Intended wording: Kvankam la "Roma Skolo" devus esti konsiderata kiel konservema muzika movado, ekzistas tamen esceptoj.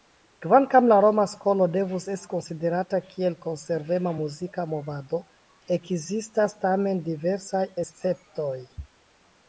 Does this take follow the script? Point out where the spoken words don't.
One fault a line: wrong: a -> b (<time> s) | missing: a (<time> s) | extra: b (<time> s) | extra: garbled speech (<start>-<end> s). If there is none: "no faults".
extra: diversaj (7.1 s)